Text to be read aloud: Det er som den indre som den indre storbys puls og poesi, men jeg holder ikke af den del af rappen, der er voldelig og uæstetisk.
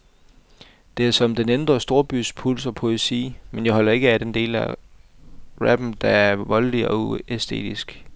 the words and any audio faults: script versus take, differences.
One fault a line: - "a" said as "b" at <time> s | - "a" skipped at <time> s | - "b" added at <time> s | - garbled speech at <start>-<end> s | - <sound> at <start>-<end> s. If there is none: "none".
- "som den indre" skipped at 1.8 s